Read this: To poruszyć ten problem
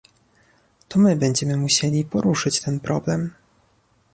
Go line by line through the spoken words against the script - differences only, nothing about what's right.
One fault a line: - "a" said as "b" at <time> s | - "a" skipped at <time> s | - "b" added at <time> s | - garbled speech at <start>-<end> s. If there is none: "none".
- "my będziemy musieli" added at 1.0 s